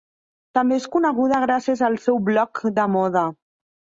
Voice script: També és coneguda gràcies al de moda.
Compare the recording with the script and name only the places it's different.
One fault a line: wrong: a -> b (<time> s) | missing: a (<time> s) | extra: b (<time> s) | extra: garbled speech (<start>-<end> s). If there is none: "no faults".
extra: seu blog (2.0 s)